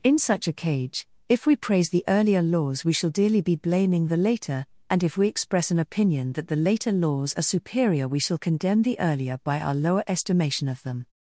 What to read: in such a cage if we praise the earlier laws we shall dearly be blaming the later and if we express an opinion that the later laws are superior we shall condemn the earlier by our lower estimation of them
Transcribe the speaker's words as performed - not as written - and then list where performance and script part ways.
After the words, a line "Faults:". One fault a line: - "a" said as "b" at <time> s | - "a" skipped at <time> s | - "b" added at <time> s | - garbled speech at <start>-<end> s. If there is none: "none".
in such a cage if we praise the earlier laws we shall dearly be blaming the later and if we express an opinion that the later laws are superior we shall condemn the earlier by our lower estimation of them
Faults:
none